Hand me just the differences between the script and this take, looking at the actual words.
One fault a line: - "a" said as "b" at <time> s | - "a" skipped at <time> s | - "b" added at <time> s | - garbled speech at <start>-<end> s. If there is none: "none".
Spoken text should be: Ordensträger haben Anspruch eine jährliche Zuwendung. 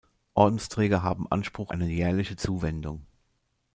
none